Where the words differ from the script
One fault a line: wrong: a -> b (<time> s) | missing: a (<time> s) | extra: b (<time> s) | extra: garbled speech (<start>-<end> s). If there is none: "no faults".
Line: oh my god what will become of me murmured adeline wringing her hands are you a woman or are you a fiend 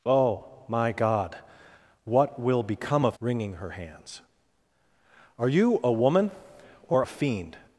missing: me murmured adeline (3.2 s)
missing: are you (7.0 s)